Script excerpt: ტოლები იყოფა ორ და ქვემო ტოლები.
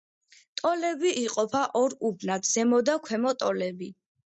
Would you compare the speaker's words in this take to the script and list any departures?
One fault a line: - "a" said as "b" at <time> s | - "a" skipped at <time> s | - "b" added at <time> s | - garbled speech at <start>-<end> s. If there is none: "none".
- "უბნად ზემო" added at 2.1 s